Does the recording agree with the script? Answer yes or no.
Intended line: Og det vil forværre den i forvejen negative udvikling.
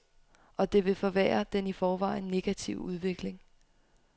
yes